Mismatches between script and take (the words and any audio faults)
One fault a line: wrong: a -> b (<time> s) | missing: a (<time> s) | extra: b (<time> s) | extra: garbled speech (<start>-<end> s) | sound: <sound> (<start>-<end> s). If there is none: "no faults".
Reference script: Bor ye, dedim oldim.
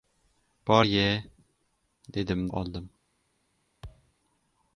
sound: thud (3.8-4.1 s)